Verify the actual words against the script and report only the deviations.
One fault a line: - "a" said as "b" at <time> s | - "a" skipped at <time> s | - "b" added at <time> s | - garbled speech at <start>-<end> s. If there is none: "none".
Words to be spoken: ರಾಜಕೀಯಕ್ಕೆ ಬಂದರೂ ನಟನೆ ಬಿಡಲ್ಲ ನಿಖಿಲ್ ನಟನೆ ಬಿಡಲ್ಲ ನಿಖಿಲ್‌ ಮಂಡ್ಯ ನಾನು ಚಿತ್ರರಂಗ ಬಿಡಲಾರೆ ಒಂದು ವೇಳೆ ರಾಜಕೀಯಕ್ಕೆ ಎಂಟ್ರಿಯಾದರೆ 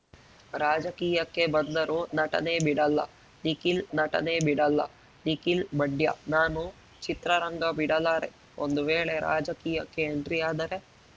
none